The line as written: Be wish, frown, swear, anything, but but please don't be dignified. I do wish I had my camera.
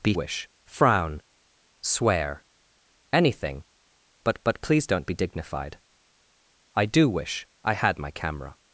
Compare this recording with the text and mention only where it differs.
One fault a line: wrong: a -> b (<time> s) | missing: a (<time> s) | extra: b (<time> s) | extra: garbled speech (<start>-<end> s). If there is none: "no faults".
no faults